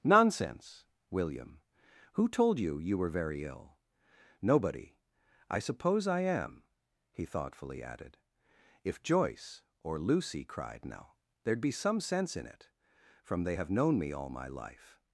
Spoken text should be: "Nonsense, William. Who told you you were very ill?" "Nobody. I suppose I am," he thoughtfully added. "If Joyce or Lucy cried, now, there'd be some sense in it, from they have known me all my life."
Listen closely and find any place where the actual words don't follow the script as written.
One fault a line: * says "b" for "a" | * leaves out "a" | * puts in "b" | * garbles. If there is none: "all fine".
all fine